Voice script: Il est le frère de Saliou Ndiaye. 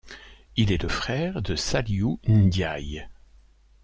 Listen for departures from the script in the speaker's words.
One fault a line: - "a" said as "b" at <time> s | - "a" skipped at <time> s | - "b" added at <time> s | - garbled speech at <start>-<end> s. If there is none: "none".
none